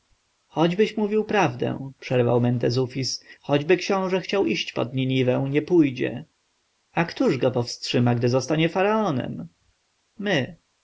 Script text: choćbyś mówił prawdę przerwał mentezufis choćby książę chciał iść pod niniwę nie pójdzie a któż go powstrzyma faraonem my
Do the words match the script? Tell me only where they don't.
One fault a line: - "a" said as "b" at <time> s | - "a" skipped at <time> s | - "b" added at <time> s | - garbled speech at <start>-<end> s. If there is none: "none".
- "gdy zostanie" added at 8.2 s